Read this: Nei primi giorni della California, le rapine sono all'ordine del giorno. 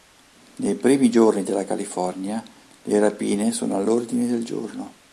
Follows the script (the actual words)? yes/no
yes